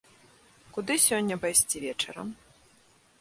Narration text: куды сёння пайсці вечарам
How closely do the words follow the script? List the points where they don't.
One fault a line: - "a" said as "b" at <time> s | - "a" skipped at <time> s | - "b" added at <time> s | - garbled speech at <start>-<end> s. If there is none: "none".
none